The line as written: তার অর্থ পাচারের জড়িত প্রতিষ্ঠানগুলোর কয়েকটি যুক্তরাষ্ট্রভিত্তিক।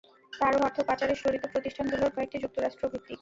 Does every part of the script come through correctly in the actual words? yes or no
yes